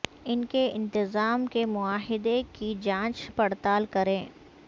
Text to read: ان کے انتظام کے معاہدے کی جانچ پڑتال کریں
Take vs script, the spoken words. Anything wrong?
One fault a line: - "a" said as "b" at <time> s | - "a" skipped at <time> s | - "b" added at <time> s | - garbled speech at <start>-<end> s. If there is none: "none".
none